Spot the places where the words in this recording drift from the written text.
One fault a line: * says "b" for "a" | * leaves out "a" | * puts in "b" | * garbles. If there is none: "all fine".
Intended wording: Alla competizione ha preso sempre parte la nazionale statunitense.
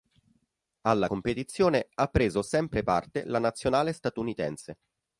all fine